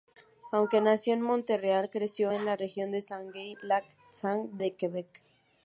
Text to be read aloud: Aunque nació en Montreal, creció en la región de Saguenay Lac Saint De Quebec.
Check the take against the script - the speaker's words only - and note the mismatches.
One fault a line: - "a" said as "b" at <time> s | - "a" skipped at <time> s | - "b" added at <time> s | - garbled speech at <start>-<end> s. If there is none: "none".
none